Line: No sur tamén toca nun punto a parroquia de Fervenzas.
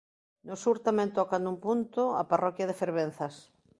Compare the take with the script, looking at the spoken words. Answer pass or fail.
pass